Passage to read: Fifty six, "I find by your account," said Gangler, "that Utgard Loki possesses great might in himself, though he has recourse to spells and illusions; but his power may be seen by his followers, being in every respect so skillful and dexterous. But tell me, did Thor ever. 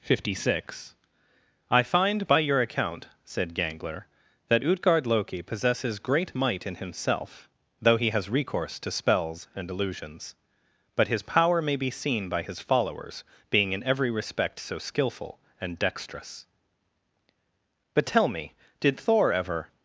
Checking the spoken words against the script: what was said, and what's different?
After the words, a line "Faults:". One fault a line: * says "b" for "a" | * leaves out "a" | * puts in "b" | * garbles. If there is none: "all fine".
Fifty six, "I find by your account," said Gangler, "that Utgard Loki possesses great might in himself, though he has recourse to spells and illusions; but his power may be seen by his followers, being in every respect so skillful and dexterous. But tell me, did Thor ever.
Faults:
all fine